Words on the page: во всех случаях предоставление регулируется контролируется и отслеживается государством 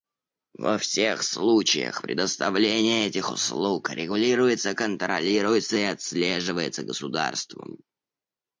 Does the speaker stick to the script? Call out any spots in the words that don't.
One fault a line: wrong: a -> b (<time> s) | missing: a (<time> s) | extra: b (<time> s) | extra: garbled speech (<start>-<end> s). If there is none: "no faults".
extra: этих услуг (3.1 s)